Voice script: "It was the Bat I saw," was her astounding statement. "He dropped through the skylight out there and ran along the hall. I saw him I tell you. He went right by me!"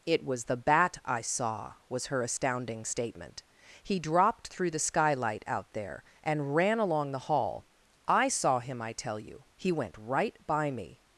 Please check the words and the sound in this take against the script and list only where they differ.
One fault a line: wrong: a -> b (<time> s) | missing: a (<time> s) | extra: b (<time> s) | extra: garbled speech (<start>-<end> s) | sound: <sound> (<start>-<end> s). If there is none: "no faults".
no faults